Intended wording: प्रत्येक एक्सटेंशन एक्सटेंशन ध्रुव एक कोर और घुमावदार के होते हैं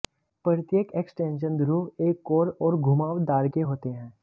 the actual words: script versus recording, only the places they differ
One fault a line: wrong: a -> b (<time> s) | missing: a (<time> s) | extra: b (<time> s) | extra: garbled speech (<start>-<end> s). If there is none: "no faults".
missing: एक्सटेंशन (1.6 s)